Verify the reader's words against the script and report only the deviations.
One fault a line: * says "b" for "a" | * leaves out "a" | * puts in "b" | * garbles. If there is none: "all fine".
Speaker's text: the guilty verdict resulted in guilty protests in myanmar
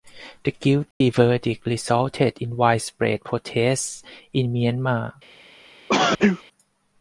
* says "widespread" for "guilty"